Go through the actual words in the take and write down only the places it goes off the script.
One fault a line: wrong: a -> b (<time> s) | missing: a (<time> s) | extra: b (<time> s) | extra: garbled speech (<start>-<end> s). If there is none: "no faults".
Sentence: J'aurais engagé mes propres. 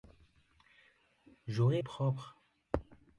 missing: engagé mes (1.8 s)